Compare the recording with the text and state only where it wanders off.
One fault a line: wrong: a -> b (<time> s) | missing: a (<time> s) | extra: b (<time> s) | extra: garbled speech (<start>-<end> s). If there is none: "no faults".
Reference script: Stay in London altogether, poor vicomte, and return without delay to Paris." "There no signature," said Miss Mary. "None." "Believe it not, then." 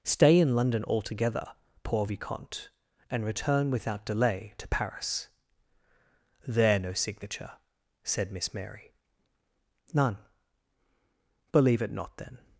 no faults